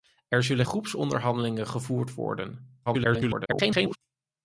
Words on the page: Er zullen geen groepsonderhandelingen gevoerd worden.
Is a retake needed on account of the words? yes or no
yes